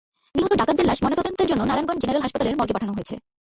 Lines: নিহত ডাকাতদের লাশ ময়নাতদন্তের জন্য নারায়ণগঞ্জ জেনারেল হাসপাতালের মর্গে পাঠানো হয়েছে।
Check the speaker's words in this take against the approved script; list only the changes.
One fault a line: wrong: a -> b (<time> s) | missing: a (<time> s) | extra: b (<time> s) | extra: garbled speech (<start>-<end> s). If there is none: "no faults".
no faults